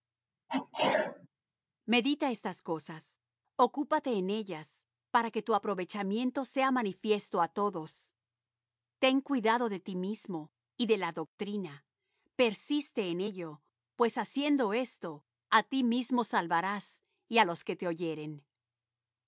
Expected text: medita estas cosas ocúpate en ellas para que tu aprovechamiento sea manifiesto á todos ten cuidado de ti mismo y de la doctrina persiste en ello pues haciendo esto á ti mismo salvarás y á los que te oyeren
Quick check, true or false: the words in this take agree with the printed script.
true